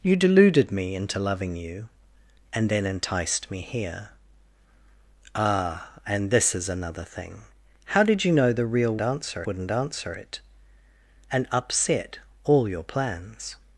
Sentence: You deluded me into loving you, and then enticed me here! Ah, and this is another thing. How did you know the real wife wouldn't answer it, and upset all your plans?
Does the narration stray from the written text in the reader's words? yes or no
yes